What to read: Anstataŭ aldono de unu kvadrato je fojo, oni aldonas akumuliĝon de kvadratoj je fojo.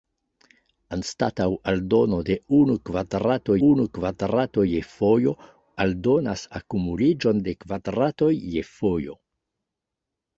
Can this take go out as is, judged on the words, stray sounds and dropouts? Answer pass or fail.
fail